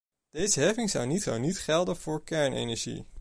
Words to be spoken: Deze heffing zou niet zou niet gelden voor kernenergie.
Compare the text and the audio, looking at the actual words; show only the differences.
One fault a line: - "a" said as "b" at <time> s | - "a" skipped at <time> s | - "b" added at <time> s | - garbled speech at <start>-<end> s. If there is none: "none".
none